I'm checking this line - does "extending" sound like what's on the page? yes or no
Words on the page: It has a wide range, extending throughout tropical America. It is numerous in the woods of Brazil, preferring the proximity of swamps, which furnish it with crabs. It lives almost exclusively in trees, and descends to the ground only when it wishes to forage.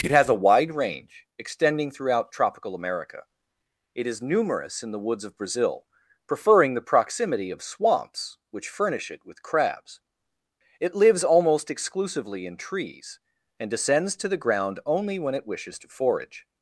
yes